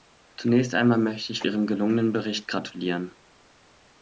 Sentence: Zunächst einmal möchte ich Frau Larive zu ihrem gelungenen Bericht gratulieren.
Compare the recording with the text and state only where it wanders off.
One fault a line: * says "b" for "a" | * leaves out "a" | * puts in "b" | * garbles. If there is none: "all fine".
* leaves out "Frau Larive zu"